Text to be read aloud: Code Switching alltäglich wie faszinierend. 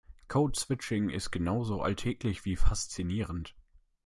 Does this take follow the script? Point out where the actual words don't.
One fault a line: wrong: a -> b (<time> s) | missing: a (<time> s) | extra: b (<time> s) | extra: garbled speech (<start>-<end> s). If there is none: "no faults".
extra: ist genauso (1.1 s)